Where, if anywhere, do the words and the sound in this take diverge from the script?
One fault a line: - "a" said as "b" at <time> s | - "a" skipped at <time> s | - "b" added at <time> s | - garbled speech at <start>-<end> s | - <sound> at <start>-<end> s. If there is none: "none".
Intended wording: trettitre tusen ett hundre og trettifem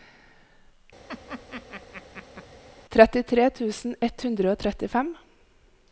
- laugh at 1.1-2.5 s